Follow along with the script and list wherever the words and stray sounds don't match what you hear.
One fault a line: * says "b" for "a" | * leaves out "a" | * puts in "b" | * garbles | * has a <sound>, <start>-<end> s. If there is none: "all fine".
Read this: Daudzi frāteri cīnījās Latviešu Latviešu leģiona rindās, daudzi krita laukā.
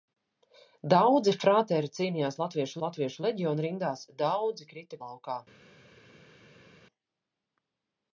all fine